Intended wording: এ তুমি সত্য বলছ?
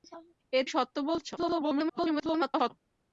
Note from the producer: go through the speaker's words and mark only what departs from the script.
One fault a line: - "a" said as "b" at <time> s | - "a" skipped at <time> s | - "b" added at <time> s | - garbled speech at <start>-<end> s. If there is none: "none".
- "তুমি" skipped at 0.6 s
- garbled speech at 1.4-2.7 s